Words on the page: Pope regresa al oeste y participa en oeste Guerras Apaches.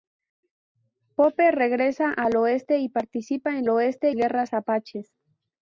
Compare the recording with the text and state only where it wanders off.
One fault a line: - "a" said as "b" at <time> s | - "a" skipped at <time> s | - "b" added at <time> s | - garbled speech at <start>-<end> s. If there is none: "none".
none